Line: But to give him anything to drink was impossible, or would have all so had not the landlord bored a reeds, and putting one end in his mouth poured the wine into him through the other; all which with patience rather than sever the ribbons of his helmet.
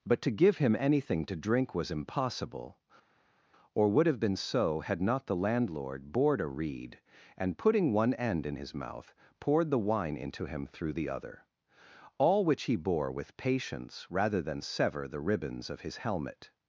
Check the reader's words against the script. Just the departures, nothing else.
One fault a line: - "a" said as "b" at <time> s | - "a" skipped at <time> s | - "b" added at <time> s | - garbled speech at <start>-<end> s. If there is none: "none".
- "all" said as "been" at 4.2 s
- "reeds" said as "reed" at 6.5 s
- "he bore" added at 12.6 s